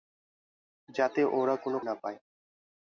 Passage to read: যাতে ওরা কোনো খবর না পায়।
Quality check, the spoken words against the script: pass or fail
fail